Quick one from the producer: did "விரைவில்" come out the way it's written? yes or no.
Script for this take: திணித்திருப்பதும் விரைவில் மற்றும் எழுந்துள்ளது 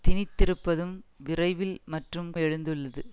yes